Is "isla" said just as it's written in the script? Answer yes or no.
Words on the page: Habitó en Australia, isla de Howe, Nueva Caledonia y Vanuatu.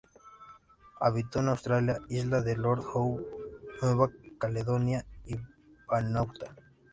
yes